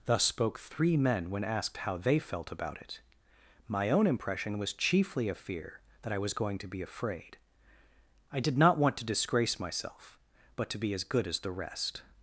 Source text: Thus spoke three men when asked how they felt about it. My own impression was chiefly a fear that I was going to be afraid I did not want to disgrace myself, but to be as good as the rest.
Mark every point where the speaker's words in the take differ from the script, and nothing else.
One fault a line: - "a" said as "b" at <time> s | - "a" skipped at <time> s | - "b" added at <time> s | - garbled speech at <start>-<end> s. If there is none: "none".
none